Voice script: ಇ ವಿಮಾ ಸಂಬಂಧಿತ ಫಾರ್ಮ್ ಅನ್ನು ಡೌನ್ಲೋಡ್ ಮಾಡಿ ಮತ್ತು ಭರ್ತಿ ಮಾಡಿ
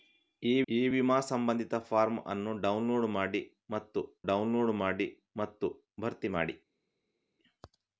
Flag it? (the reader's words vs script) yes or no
yes